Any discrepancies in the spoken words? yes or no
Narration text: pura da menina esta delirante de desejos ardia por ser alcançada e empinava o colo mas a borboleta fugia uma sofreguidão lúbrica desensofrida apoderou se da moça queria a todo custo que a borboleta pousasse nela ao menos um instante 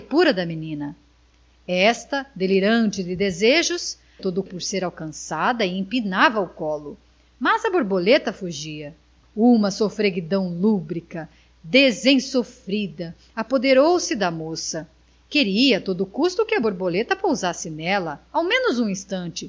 yes